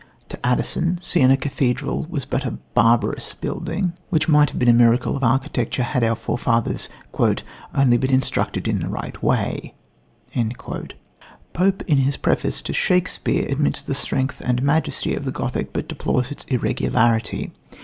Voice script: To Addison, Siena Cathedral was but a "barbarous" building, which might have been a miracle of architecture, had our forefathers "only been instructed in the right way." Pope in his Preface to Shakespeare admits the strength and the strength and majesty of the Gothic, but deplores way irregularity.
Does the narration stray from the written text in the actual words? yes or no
yes